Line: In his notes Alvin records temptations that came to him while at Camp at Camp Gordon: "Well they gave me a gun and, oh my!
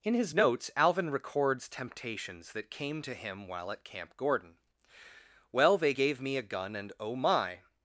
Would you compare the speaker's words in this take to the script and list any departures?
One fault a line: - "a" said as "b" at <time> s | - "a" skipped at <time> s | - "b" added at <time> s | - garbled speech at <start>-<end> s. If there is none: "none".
- "at Camp" skipped at 4.1 s